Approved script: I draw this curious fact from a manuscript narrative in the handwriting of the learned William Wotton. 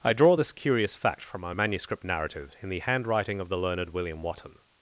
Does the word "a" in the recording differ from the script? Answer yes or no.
yes